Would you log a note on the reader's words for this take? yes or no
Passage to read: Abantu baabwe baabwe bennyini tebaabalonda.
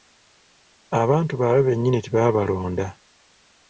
yes